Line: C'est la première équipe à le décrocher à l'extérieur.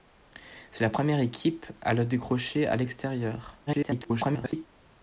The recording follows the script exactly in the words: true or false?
false